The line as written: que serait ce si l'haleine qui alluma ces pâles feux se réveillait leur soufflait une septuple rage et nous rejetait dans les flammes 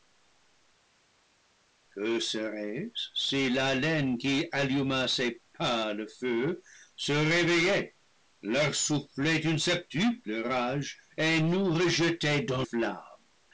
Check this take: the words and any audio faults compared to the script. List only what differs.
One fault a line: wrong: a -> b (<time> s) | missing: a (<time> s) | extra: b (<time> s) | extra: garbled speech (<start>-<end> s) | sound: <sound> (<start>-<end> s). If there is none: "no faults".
missing: les (12.6 s)